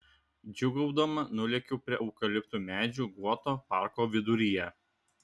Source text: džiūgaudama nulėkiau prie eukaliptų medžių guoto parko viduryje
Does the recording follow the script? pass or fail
pass